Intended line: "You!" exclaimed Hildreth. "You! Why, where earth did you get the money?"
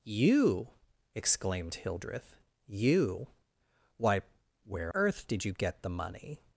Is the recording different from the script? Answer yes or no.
no